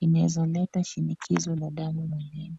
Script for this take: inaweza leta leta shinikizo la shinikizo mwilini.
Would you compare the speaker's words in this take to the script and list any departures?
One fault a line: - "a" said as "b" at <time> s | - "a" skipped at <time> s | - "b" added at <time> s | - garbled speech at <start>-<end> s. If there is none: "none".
- "leta" skipped at 0.8 s
- "shinikizo" said as "damu" at 1.7 s